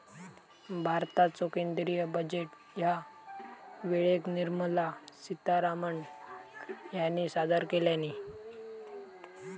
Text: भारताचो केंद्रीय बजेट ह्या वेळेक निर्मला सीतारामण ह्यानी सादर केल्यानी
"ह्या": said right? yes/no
yes